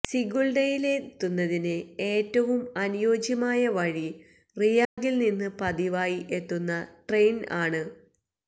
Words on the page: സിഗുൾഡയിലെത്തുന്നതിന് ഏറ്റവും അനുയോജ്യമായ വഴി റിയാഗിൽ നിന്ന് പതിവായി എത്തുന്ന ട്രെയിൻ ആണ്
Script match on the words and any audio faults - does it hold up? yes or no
no